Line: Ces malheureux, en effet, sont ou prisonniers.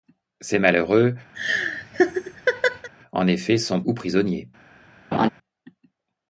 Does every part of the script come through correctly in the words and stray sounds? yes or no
no